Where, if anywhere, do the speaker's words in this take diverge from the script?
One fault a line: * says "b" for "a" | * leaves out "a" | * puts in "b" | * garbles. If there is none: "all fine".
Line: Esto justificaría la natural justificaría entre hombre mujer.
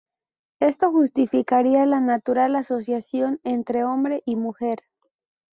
* says "asociación" for "justificaría"
* puts in "y"